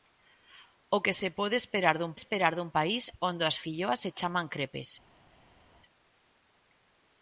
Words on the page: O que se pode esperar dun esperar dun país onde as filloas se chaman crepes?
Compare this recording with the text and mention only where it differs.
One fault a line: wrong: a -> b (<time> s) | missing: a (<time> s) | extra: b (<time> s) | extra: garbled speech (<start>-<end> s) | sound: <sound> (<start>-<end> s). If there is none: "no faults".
no faults